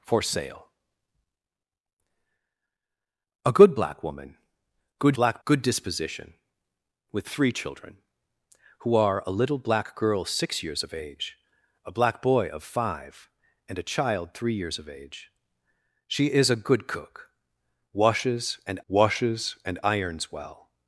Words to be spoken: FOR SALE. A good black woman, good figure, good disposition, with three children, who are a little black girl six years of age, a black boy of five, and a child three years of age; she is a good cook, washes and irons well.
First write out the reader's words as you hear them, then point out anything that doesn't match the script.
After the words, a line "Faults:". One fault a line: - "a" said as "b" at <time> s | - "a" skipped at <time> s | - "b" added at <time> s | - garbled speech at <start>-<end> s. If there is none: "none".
FOR SALE. A good black woman, good black, good disposition, with three children, who are a little black girl six years of age, a black boy of five, and a child three years of age; she is a good cook, washes and washes and irons well.
Faults:
- "figure" said as "black" at 5.1 s
- "washes and" added at 18.9 s